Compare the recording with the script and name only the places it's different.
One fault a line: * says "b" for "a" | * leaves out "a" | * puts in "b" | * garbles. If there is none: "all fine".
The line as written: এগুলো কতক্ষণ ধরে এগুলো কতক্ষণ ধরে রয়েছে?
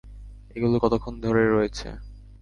* leaves out "এগুলো কতক্ষণ ধরে"